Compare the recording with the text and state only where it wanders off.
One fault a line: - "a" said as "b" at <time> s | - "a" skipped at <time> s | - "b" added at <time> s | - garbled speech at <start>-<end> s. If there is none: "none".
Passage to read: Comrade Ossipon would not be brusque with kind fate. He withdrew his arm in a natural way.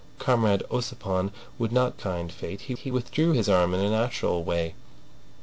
- "be brusque with" skipped at 2.0 s
- "he" added at 2.8 s